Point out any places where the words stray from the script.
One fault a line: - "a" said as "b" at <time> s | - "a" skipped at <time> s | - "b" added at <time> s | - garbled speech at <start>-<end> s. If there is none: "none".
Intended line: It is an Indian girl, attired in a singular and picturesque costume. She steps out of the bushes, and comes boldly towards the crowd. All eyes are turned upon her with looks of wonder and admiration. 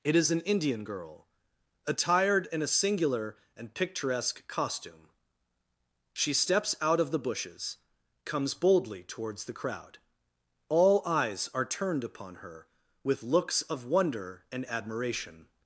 - "and" skipped at 7.8 s